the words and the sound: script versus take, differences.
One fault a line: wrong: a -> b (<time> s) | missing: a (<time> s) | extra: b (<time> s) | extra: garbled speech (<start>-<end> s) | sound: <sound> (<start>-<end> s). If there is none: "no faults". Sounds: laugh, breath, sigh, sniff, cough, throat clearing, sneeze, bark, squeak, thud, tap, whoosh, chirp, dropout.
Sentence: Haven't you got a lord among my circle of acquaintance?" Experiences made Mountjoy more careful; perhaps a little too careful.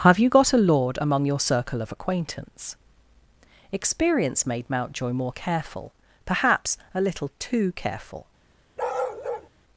wrong: Haven't -> Have (0.0 s)
wrong: my -> your (1.2 s)
wrong: Experiences -> Experience (3.7 s)
sound: bark (8.8-9.5 s)